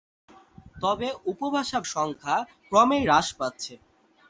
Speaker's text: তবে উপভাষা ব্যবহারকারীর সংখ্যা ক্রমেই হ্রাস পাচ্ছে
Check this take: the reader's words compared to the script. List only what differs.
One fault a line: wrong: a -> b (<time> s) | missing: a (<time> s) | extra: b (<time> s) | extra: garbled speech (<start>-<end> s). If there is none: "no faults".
missing: ব্যবহারকারীর (1.8 s)